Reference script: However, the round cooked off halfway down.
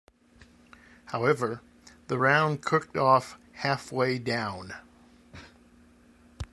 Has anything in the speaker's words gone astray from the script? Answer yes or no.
no